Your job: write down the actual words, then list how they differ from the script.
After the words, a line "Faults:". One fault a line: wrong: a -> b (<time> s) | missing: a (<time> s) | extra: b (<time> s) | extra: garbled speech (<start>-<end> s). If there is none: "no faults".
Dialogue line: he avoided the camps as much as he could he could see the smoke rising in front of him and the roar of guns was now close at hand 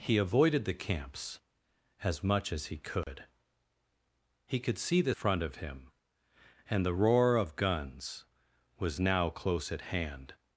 he avoided the camps as much as he could he could see the front of him and the roar of guns was now close at hand
Faults:
missing: smoke rising in (5.1 s)